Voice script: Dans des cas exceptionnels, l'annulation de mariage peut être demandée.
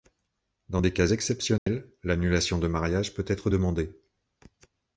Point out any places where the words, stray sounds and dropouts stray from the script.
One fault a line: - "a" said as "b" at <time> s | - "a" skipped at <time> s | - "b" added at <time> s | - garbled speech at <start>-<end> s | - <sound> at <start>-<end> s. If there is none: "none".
- dropout at 1.6-1.7 s